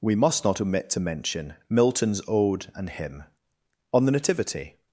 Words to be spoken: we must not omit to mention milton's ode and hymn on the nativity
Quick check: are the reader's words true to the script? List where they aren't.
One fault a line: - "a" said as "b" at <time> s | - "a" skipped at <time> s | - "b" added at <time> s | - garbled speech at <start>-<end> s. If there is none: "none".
none